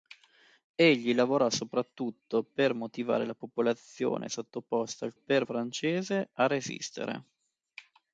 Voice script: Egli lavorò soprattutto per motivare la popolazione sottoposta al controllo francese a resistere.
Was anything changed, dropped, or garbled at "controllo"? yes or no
yes